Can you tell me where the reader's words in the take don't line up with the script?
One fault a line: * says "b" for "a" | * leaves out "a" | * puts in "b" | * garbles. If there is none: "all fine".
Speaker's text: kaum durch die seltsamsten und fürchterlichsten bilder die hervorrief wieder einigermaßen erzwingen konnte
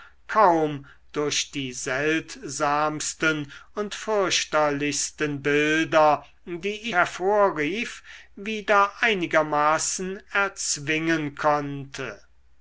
all fine